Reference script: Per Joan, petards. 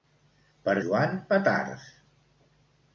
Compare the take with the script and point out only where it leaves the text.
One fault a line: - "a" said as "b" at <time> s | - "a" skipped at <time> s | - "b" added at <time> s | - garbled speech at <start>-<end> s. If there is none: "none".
none